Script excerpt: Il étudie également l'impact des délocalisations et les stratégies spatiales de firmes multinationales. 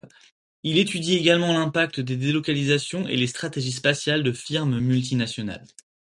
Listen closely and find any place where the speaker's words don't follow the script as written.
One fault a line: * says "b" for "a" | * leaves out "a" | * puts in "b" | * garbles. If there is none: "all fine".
all fine